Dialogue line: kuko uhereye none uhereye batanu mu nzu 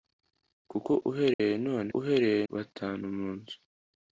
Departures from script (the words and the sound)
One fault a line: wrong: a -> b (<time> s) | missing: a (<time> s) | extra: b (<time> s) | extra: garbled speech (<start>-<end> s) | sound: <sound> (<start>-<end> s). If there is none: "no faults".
sound: dropout (1.3-1.4 s)